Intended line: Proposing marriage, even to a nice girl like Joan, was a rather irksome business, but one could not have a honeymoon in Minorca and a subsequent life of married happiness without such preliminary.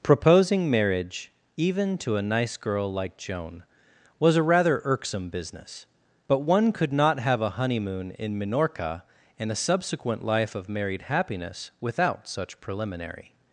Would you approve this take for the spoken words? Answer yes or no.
yes